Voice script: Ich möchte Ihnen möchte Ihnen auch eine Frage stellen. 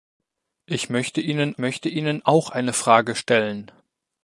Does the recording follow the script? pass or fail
pass